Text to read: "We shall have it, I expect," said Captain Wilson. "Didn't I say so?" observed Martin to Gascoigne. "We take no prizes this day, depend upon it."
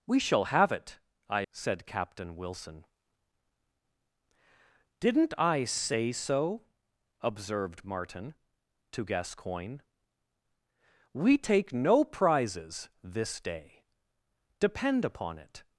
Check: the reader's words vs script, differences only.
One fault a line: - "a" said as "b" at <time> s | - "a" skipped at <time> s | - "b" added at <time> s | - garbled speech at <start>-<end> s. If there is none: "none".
- "expect" skipped at 1.4 s